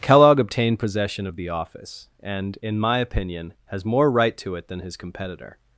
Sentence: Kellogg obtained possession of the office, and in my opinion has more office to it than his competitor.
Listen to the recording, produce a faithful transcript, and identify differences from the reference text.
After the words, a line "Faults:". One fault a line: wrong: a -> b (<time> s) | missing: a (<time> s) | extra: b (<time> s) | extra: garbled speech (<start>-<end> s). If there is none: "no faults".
Kellogg obtained possession of the office, and in my opinion has more right to it than his competitor.
Faults:
wrong: office -> right (4.1 s)